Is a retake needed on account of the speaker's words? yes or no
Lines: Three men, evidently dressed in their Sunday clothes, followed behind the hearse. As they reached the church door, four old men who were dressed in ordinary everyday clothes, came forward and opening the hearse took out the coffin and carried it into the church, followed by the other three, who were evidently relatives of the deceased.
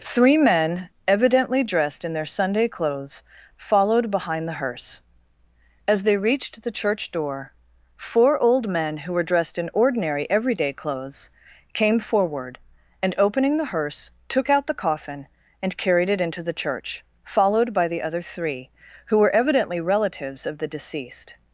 no